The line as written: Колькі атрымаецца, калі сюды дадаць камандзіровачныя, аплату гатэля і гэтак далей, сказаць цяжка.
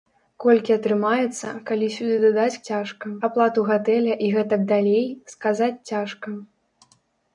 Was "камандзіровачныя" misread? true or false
true